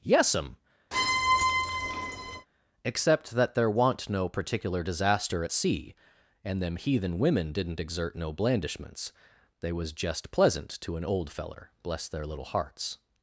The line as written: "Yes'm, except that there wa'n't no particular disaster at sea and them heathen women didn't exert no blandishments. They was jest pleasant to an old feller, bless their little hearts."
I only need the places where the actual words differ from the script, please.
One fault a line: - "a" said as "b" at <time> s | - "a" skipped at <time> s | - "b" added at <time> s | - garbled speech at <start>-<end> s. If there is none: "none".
none